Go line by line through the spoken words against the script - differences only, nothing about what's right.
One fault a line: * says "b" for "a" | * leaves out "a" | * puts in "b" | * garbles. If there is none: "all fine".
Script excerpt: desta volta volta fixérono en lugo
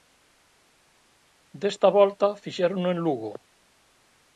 * leaves out "volta"